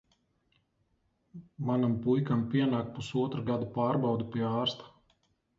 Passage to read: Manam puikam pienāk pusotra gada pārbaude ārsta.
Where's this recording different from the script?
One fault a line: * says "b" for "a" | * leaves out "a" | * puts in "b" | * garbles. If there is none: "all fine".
* puts in "pie"